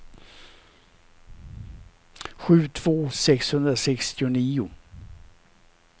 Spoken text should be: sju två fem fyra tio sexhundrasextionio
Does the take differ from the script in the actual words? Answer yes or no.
yes